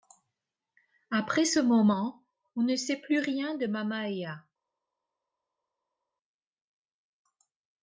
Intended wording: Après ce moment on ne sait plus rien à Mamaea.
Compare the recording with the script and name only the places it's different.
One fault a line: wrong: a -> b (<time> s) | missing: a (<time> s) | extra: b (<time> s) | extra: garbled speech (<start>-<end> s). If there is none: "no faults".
wrong: à -> de (3.5 s)